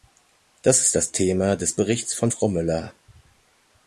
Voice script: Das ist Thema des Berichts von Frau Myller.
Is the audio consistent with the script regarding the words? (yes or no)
no